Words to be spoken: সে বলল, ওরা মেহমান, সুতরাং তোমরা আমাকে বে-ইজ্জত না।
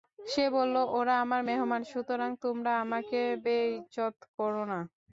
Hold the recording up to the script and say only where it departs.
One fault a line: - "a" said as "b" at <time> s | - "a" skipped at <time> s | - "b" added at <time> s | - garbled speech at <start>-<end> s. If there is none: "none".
- "আমার" added at 1.2 s
- "করো" added at 4.4 s